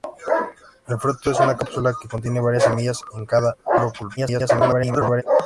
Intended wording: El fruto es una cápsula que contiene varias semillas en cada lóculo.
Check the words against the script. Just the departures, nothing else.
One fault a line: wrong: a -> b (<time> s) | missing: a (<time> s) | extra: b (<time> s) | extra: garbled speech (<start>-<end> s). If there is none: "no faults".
extra: garbled speech (4.2-5.2 s)